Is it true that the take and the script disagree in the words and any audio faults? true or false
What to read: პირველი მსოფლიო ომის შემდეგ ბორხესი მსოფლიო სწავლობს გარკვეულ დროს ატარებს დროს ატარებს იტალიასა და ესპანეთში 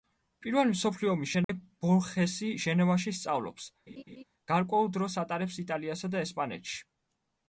true